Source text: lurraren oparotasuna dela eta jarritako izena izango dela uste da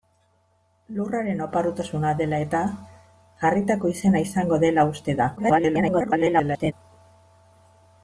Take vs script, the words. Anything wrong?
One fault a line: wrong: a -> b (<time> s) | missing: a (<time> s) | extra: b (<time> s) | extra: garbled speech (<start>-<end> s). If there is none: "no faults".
extra: garbled speech (5.4-6.7 s)